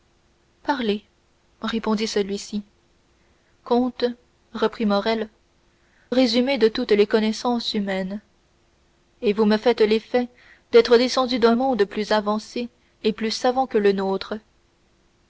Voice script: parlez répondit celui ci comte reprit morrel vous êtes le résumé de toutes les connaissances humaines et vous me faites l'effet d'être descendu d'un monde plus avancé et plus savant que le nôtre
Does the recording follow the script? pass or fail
fail